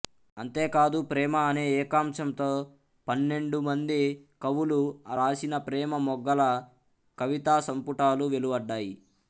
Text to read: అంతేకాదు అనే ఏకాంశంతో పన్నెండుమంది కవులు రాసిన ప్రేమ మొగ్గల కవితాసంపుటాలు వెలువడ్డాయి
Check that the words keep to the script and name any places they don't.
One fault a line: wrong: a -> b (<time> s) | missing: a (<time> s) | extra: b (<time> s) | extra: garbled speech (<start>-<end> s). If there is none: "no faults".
extra: ప్రేమ (1.1 s)